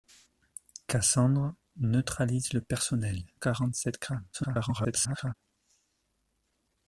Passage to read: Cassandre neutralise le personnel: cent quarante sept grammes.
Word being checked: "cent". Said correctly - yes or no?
no